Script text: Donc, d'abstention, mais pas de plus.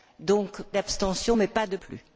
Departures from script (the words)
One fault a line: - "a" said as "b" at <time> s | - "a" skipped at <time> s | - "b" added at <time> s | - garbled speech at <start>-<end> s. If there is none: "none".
none